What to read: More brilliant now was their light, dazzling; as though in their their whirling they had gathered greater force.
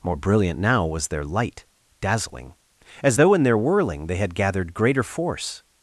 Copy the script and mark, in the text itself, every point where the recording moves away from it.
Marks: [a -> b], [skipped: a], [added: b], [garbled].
More brilliant now was their light, dazzling; as though in their [skipped: their] whirling they had gathered greater force.